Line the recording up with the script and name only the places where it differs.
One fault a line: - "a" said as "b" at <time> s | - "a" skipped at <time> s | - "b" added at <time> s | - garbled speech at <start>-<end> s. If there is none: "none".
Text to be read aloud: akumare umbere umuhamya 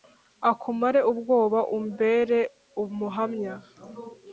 - "ubwoba" added at 1.1 s